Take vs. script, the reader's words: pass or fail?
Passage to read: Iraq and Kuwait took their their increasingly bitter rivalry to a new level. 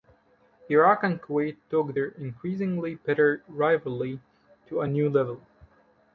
fail